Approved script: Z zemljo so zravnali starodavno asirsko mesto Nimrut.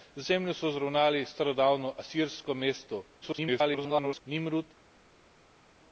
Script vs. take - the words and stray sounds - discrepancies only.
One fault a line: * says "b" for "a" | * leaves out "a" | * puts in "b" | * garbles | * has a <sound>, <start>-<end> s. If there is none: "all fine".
* garbles